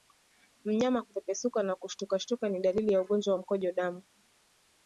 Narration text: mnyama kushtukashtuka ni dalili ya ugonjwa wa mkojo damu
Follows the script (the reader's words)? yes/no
no